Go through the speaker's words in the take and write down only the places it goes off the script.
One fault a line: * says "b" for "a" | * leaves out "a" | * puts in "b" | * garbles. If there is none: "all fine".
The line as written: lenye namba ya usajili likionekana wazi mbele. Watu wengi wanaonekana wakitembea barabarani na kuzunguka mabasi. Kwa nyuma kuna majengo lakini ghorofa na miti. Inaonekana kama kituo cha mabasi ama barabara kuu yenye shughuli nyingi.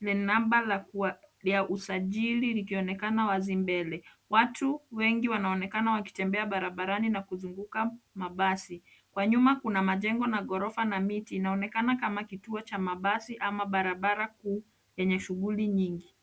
* says "na" for "lakini"